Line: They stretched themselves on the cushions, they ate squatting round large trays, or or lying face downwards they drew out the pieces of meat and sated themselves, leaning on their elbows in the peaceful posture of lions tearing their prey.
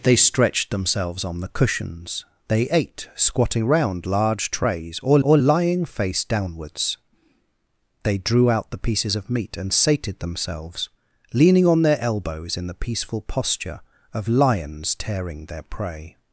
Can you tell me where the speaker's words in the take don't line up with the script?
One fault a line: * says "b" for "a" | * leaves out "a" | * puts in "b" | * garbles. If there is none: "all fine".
all fine